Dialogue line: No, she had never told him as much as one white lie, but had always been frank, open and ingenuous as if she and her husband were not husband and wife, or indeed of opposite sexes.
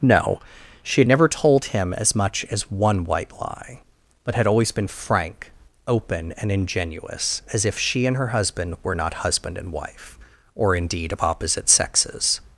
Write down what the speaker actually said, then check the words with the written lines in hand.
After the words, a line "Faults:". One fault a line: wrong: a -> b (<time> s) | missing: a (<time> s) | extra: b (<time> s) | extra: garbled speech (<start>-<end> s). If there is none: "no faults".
No, she had never told him as much as one white lie, but had always been frank, open and ingenuous as if she and her husband were not husband and wife, or indeed of opposite sexes.
Faults:
no faults